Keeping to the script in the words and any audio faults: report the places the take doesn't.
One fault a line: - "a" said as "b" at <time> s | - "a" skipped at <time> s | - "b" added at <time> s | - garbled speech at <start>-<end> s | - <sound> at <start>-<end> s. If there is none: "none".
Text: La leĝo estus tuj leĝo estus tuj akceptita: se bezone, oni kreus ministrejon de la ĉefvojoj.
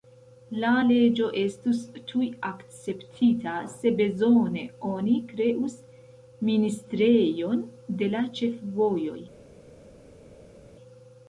- "leĝo estus tuj" skipped at 2.3 s